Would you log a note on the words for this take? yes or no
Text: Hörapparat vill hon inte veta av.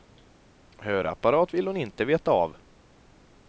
no